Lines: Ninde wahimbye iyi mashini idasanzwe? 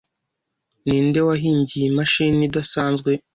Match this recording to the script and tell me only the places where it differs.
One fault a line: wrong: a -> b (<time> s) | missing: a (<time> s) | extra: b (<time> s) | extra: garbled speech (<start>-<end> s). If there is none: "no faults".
no faults